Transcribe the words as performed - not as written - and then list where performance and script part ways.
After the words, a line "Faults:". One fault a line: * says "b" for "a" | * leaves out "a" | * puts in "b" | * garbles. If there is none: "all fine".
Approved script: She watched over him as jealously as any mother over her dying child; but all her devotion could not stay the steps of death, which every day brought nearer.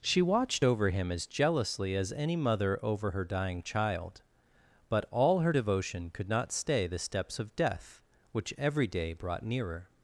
She watched over him as jealously as any mother over her dying child; but all her devotion could not stay the steps of death, which every day brought nearer.
Faults:
all fine